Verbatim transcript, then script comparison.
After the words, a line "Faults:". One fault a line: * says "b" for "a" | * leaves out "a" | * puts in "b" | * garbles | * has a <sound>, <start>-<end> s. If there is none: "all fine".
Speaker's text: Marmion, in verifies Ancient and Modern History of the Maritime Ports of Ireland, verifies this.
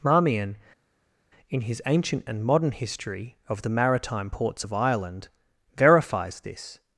Marmion, in his Ancient and Modern History of the Maritime Ports of Ireland, verifies this.
Faults:
* says "his" for "verifies"